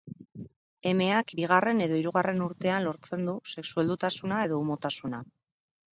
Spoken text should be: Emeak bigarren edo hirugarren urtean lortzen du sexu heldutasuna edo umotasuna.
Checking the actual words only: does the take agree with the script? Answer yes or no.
yes